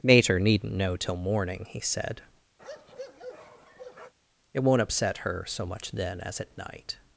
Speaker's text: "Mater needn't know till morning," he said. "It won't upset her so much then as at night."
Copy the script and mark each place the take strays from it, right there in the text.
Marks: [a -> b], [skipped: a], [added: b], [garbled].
"Mater needn't know till morning," he said. "It won't upset her so much then as at night."